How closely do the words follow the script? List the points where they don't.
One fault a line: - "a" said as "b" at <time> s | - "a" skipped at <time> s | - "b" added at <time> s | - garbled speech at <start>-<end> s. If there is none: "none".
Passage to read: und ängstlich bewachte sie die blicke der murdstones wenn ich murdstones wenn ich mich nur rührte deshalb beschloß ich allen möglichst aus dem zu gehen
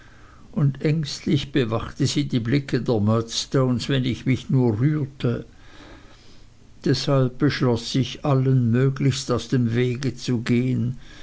- "murdstones wenn ich" skipped at 4.2 s
- "wege" added at 9.7 s